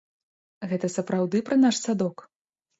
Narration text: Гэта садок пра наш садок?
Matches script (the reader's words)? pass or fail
fail